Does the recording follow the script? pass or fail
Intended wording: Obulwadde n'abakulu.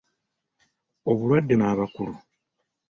pass